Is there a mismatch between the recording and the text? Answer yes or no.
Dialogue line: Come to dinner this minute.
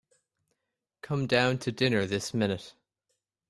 yes